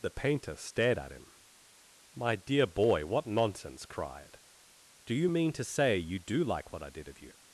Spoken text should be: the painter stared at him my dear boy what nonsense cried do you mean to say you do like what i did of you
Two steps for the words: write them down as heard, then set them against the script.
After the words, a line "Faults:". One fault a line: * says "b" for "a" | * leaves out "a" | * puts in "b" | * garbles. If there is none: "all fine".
the painter stared at him my dear boy what nonsense cried do you mean to say you do like what i did of you
Faults:
all fine